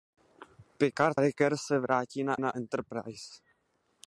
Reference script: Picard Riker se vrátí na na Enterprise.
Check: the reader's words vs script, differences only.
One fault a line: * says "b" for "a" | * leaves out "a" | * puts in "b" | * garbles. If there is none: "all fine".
all fine